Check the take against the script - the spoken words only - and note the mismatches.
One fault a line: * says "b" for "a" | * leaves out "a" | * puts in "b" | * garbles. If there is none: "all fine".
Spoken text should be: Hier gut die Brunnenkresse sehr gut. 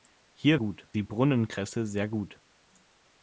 all fine